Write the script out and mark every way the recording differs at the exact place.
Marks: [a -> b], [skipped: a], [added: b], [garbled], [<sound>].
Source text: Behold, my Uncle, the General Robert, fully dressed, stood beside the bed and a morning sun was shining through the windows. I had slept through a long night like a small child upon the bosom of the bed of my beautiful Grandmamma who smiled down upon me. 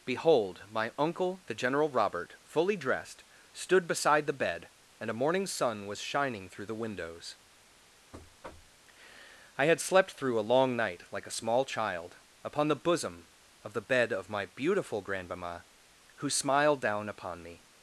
Behold, my Uncle, the General Robert, fully dressed, stood beside the bed and a morning sun was shining through the windows. [thud] I had slept through a long night like a small child upon the bosom of the bed of my beautiful Grandmamma who smiled down upon me.